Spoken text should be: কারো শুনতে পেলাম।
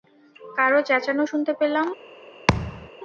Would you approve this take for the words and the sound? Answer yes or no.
no